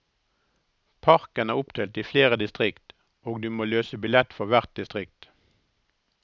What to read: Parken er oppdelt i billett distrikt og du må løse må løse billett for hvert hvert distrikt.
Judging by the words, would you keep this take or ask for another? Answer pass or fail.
fail